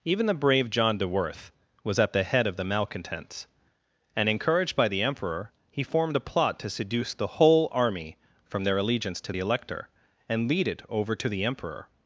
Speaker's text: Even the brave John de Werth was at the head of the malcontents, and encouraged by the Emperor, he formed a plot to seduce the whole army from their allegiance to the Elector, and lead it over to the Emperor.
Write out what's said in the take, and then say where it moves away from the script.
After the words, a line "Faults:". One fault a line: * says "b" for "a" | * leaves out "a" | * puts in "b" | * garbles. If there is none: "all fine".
Even the brave John de Werth was at the head of the malcontents, and encouraged by the Emperor, he formed a plot to seduce the whole army from their allegiance to the Elector, and lead it over to the Emperor.
Faults:
all fine